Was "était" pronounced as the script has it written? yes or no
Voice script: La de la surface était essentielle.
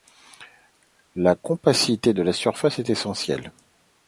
no